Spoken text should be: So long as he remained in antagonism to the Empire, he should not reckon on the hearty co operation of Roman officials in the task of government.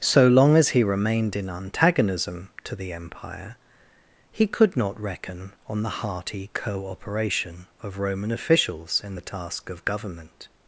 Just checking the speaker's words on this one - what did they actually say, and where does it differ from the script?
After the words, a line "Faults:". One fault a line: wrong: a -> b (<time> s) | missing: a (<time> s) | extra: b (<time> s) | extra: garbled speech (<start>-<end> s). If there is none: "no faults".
So long as he remained in antagonism to the Empire, he could not reckon on the hearty co operation of Roman officials in the task of government.
Faults:
wrong: should -> could (4.5 s)